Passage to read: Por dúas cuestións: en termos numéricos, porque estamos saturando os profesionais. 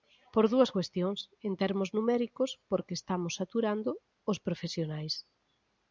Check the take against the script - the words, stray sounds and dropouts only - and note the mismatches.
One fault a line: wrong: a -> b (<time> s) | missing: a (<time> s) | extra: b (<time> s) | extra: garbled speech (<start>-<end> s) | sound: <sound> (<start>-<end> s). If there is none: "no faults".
no faults